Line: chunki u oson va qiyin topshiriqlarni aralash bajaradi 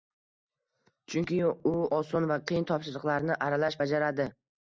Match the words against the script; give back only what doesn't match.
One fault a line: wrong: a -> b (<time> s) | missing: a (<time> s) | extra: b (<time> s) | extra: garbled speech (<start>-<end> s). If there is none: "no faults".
no faults